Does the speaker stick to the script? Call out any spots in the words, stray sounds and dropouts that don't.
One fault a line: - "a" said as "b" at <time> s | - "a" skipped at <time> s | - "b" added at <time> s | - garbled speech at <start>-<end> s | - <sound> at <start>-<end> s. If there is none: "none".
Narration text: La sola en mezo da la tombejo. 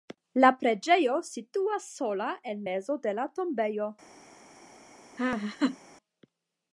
- "preĝejo situas" added at 0.6 s
- "da" said as "de" at 3.1 s
- laugh at 5.2-5.8 s